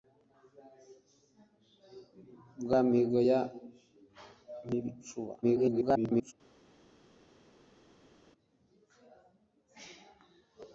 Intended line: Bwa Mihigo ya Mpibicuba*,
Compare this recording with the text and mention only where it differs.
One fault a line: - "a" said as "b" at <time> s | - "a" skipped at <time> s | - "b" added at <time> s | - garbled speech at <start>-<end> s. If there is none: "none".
- garbled speech at 5.4-6.3 s